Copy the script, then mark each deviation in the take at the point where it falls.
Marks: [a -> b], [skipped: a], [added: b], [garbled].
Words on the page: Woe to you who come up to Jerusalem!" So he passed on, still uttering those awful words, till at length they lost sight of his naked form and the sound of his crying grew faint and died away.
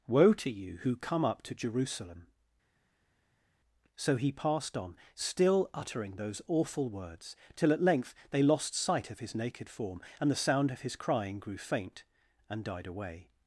Woe to you who come up to Jerusalem!" So he passed on, still uttering those awful words, till at length they lost sight of his naked form and the sound of his crying grew faint and died away.